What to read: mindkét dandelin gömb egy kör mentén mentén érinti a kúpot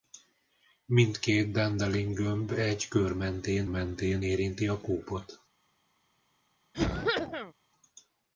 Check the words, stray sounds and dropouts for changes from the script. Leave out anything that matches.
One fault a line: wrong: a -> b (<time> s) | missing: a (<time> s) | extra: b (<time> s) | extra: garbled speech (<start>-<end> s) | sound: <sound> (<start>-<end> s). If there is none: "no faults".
sound: cough (6.7-7.5 s)